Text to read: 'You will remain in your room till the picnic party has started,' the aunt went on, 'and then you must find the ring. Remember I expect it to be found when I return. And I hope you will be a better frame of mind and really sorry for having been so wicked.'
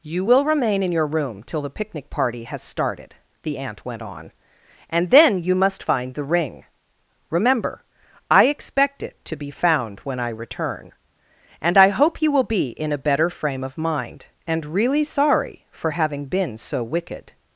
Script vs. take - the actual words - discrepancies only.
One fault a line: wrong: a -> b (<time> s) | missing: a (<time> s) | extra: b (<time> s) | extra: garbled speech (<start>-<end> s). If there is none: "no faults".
extra: in (12.7 s)